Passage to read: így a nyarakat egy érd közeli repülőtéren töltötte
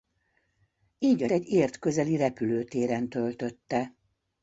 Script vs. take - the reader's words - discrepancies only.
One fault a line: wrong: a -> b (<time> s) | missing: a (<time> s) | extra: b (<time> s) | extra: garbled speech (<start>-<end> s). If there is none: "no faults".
missing: nyarakat (1.3 s)